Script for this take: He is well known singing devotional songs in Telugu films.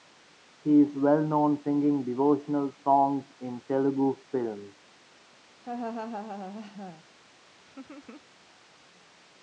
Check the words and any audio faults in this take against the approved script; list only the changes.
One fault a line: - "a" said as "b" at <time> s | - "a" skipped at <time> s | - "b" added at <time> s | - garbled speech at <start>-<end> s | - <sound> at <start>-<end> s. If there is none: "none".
- laugh at 5.6-7.0 s
- laugh at 7.6-8.3 s